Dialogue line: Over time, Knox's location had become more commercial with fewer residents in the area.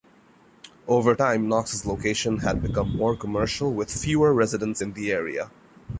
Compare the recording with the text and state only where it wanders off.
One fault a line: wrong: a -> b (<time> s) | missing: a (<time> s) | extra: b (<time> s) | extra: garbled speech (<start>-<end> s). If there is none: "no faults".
no faults